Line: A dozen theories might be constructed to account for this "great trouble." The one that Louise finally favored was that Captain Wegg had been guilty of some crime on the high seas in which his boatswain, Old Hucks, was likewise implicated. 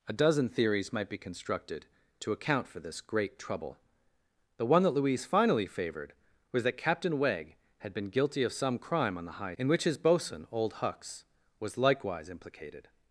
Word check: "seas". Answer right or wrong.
wrong